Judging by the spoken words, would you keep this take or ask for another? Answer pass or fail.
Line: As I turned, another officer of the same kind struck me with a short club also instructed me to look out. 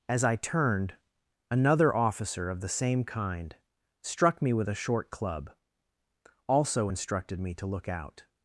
pass